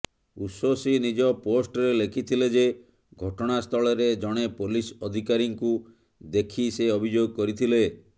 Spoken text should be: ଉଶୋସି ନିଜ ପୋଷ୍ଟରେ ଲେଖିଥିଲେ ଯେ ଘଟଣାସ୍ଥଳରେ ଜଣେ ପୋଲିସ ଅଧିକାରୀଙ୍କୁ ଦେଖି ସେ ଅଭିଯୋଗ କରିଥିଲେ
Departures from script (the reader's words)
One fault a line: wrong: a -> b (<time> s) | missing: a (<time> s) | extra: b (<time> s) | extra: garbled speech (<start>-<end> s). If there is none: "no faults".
no faults